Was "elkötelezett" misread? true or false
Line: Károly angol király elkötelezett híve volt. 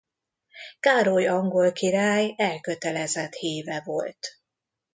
false